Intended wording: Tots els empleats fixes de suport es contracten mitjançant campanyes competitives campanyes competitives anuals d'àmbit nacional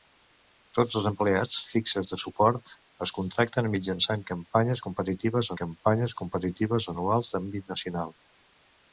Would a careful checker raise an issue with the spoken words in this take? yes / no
no